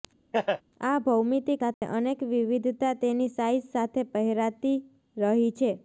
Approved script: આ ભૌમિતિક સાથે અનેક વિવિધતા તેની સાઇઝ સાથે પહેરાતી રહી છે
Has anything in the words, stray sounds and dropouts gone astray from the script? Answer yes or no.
yes